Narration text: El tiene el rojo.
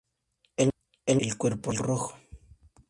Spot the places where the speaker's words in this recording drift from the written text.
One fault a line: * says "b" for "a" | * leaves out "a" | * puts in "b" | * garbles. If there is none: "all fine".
all fine